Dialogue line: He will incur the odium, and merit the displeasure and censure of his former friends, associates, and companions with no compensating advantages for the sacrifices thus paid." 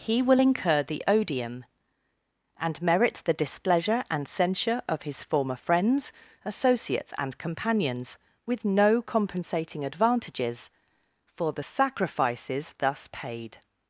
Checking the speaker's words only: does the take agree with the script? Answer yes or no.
yes